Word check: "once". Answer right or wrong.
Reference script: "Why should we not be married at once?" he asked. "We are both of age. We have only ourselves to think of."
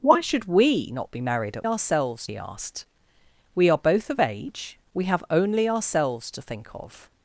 wrong